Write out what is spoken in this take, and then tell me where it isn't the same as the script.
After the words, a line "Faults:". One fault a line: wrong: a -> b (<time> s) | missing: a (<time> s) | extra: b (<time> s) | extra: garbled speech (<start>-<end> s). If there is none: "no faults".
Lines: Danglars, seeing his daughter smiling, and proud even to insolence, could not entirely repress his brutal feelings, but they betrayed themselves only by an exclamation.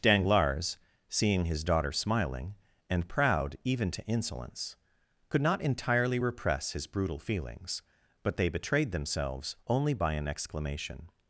Danglars, seeing his daughter smiling, and proud even to insolence, could not entirely repress his brutal feelings, but they betrayed themselves only by an exclamation.
Faults:
no faults